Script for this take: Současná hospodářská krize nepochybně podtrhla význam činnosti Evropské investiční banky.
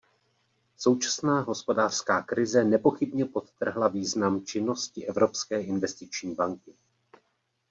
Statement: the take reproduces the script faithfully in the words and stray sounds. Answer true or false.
true